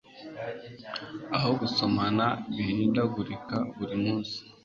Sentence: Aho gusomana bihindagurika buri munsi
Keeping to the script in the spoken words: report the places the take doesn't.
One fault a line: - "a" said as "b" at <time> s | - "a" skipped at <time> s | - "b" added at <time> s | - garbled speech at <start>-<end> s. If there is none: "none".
none